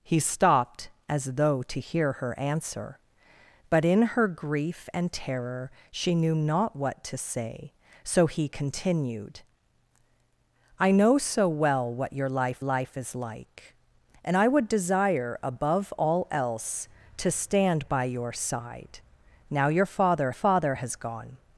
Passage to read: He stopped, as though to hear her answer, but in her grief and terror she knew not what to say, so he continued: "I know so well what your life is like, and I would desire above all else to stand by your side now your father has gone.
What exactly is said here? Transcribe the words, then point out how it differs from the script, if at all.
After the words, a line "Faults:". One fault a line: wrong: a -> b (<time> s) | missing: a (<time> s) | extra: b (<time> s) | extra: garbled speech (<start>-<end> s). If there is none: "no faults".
He stopped, as though to hear her answer, but in her grief and terror she knew not what to say, so he continued: "I know so well what your life life is like, and I would desire above all else to stand by your side now your father father has gone.
Faults:
extra: life (12.6 s)
extra: father (20.3 s)